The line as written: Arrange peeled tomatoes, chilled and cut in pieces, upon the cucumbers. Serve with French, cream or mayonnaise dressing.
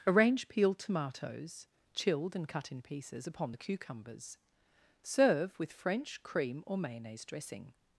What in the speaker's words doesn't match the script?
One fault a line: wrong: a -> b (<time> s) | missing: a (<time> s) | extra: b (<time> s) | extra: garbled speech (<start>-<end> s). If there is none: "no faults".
no faults